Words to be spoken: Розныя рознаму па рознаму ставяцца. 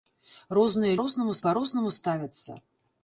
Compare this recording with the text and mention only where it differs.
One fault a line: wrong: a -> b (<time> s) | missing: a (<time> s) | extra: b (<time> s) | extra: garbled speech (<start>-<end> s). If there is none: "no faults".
no faults